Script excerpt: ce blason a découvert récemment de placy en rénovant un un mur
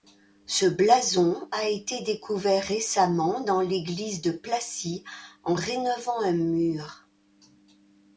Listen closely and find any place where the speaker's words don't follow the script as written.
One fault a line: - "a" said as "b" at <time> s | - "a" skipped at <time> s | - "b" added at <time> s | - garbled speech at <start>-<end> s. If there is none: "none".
- "été" added at 1.7 s
- "dans l'église" added at 3.4 s
- "un" skipped at 6.3 s